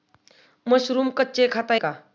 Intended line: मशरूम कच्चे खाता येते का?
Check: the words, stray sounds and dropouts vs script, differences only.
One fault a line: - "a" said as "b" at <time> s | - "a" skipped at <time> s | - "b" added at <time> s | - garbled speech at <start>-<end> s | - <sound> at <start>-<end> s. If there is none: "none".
- "येते" skipped at 1.8 s